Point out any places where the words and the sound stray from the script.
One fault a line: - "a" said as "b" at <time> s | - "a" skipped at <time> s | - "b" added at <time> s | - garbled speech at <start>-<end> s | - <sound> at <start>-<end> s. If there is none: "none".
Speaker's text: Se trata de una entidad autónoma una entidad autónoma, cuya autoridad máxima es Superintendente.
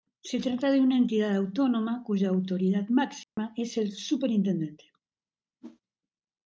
- "una entidad autónoma" skipped at 2.0 s
- dropout at 3.2-3.4 s
- "el" added at 3.8 s
- whoosh at 5.6-5.8 s